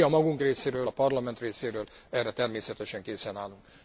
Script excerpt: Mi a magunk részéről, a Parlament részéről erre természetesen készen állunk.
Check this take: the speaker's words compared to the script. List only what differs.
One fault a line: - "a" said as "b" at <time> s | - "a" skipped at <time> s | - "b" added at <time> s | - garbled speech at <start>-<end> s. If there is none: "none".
none